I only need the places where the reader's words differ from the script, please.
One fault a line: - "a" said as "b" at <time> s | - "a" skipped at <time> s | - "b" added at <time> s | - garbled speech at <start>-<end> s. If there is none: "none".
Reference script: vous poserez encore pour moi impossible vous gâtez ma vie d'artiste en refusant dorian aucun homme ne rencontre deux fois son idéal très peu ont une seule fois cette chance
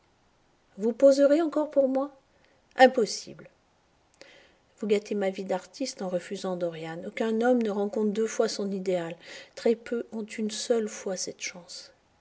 none